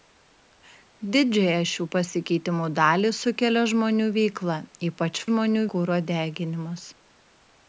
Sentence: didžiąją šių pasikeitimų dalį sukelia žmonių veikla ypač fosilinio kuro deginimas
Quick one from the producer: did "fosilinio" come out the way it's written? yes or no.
no